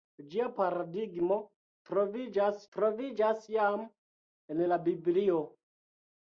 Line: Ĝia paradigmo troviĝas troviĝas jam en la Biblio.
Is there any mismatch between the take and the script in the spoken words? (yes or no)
no